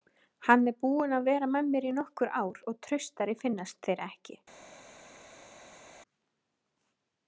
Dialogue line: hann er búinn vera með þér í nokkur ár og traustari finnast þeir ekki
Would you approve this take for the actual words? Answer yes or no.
no